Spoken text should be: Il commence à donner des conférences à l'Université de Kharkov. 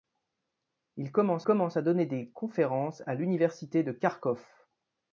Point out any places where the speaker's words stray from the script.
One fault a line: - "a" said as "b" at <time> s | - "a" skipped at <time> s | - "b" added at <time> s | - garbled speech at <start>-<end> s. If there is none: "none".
- "commence" added at 1.4 s